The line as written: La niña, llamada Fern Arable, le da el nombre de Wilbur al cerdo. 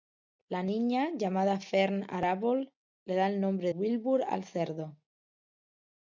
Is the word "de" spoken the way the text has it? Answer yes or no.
no